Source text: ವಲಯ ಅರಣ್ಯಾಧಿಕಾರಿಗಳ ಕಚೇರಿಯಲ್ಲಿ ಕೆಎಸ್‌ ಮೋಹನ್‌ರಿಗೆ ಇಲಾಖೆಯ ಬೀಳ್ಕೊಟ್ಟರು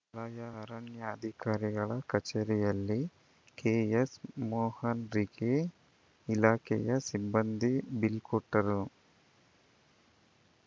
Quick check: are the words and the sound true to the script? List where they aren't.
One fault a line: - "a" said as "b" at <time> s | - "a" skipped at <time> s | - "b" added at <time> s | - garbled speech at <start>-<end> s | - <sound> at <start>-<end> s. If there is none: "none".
- "ಸಿಬ್ಬಂದಿ" added at 7.1 s